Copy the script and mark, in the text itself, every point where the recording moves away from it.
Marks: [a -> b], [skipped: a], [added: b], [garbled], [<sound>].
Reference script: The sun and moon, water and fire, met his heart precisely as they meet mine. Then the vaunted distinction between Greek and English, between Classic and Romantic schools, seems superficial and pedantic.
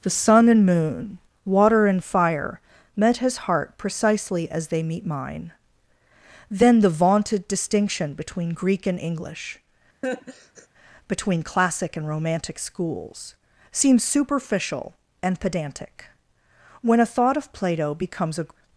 The sun and moon, water and fire, met his heart precisely as they meet mine. Then the vaunted distinction between Greek and English, [laugh] between Classic and Romantic schools, seems superficial and pedantic. [added: When a thought of Plato becomes a]